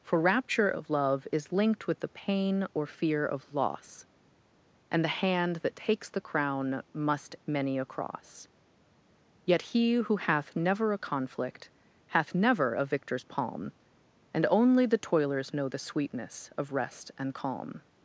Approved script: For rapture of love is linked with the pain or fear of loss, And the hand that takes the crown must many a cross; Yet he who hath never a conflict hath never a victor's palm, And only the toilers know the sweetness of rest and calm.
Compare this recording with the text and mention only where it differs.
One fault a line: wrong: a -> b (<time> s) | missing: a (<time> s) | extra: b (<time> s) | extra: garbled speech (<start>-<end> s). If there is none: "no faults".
no faults